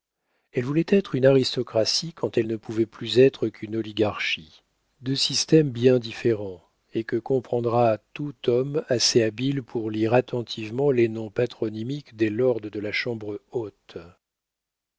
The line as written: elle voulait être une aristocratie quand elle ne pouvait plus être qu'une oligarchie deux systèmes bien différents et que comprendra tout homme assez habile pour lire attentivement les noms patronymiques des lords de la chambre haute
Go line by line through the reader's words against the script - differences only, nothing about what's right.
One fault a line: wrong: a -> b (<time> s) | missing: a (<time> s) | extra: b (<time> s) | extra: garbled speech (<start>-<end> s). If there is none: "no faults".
no faults